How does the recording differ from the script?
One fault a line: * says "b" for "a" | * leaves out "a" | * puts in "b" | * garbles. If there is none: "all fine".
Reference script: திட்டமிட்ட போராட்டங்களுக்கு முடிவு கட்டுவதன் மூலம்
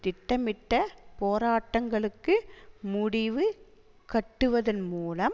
all fine